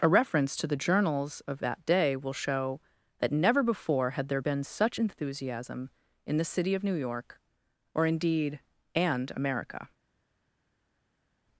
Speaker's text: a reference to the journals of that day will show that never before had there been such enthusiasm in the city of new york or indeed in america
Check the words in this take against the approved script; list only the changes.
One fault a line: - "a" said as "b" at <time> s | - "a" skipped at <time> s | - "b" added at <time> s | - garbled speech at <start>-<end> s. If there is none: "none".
- "in" said as "and" at 9.0 s